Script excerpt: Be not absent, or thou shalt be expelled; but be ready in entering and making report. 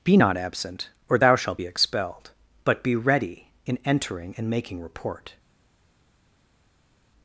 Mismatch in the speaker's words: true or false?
false